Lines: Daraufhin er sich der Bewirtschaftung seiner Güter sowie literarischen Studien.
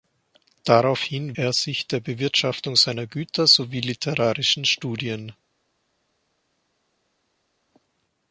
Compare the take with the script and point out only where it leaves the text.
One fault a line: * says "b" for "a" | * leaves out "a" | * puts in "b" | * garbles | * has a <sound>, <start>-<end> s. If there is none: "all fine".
all fine